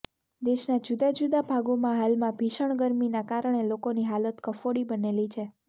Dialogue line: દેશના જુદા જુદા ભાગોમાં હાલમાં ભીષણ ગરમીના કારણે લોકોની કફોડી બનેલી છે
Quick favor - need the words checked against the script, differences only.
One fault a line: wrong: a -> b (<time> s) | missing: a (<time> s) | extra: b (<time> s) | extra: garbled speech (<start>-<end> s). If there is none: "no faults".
extra: હાલત (4.1 s)